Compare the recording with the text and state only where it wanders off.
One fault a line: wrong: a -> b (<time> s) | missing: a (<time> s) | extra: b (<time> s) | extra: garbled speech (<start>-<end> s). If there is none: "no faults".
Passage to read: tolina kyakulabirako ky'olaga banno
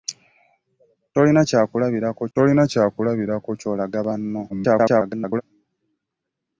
extra: tolina kyakulabirako (2.3 s)
extra: garbled speech (4.5-5.4 s)